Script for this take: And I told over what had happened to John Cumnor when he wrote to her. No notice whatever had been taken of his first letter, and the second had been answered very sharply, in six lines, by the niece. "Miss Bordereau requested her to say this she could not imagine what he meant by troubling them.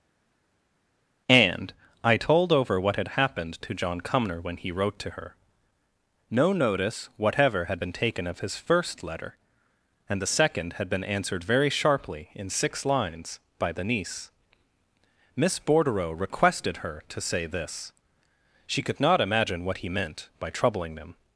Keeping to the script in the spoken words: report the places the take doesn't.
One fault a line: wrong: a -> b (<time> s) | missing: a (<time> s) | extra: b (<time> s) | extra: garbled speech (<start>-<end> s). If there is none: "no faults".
no faults